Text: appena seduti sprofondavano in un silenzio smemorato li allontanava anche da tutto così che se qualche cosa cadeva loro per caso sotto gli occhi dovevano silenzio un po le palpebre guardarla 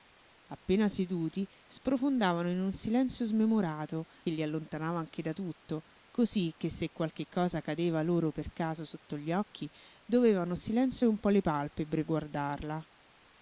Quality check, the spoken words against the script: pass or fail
pass